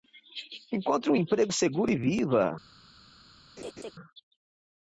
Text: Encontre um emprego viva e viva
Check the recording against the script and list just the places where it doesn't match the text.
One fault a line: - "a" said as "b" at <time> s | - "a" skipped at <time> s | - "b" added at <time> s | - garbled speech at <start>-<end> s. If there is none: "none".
- "viva" said as "seguro" at 1.5 s